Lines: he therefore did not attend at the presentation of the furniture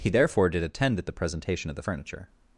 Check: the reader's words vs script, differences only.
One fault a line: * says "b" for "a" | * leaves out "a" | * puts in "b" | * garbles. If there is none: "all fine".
* leaves out "not"